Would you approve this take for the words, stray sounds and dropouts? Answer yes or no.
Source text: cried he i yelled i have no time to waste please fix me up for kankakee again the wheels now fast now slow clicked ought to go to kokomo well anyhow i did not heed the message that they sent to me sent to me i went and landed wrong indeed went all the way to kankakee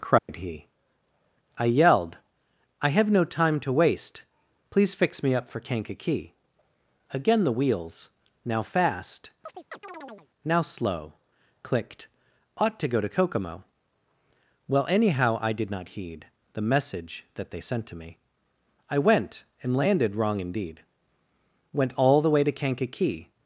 no